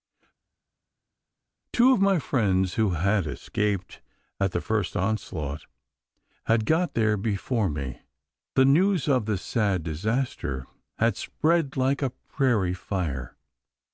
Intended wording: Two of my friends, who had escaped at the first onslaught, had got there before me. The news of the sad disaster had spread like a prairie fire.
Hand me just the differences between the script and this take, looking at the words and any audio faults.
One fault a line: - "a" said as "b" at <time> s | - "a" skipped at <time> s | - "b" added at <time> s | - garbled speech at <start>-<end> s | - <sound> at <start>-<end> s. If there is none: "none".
none